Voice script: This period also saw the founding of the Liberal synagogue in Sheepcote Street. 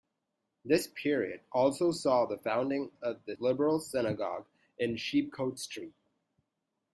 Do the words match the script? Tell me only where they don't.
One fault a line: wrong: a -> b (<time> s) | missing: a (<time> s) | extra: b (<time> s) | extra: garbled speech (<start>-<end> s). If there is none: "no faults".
no faults